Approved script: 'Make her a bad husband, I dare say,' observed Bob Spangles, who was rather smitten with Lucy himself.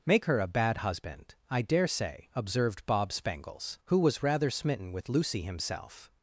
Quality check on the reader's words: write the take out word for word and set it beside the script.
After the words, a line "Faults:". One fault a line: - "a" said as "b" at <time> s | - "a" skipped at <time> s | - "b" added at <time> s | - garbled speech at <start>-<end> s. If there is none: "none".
'Make her a bad husband, I dare say,' observed Bob Spangles, who was rather smitten with Lucy himself.
Faults:
none